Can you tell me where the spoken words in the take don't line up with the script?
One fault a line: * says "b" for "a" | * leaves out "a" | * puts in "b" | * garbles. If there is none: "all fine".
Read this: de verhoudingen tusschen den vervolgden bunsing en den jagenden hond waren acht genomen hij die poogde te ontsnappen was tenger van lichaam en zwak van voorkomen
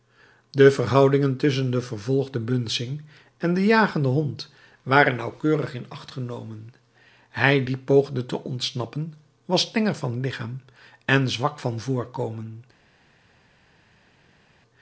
* puts in "nauwkeurig in"